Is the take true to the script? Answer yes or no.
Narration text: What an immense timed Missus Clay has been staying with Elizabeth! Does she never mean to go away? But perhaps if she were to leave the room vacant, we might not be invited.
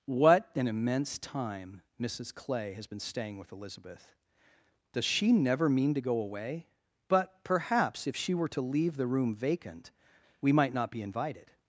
no